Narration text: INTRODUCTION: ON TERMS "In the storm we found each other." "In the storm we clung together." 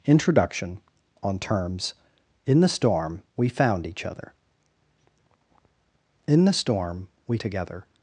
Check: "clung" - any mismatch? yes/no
yes